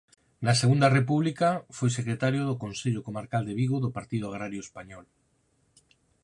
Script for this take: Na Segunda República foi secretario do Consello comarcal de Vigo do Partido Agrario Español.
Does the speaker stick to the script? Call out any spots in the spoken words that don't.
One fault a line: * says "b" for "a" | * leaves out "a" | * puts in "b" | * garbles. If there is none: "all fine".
all fine